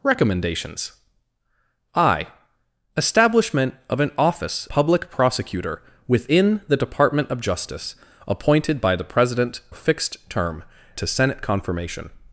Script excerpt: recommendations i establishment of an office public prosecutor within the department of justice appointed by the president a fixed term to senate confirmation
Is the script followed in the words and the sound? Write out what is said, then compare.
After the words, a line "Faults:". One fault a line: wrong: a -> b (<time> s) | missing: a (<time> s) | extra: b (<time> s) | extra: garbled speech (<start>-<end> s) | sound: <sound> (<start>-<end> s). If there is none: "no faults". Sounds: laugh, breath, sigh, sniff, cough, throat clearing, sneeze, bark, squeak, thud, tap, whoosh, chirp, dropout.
recommendations i establishment of an office public prosecutor within the department of justice appointed by the president a fixed term to senate confirmation
Faults:
no faults